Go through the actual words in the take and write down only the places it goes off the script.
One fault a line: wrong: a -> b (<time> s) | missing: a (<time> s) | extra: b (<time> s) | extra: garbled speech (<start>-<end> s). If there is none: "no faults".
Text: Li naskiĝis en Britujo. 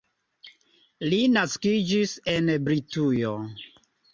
no faults